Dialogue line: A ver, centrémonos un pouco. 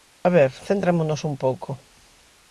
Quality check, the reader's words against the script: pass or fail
pass